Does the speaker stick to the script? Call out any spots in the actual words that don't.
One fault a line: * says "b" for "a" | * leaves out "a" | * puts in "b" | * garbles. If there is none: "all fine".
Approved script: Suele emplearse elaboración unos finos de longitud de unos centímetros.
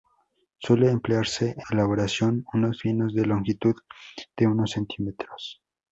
all fine